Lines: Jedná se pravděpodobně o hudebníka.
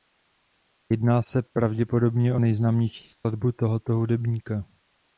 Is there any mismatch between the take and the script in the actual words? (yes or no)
yes